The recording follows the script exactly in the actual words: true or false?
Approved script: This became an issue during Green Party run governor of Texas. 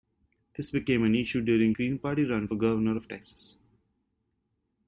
true